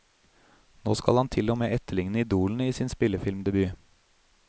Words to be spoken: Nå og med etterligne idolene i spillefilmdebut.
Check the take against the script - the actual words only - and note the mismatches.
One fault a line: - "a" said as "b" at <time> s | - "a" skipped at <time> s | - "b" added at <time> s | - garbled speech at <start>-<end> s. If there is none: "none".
- "skal han til" added at 0.9 s
- "sin" added at 2.7 s